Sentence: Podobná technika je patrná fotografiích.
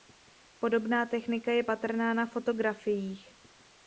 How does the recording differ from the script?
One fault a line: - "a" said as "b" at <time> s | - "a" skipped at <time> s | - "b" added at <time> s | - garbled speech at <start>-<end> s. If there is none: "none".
- "na" added at 2.1 s